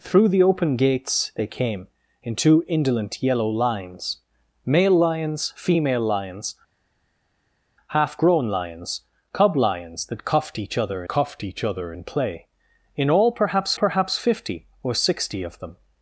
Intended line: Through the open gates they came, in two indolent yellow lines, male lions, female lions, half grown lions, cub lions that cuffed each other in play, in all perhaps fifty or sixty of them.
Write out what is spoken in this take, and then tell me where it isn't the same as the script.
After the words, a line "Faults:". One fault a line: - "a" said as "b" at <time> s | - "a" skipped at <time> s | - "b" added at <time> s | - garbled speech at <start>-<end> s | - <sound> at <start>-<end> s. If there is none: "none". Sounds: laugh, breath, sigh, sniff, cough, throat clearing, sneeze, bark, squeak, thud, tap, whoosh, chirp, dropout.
Through the open gates they came, in two indolent yellow lines, male lions, female lions, half grown lions, cub lions that cuffed each other cuffed each other in play, in all perhaps perhaps fifty or sixty of them.
Faults:
- "cuffed each other" added at 11.1 s
- "perhaps" added at 13.7 s